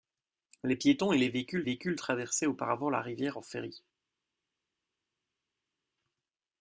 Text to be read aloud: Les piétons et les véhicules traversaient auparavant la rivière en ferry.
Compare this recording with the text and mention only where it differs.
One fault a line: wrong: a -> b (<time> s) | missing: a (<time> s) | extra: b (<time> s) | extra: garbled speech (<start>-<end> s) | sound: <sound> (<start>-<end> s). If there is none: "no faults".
extra: véhicules (1.6 s)